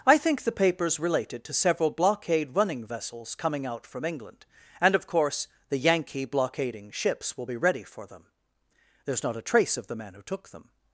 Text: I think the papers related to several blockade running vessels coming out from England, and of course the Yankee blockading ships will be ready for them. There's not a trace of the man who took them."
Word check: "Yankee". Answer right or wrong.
right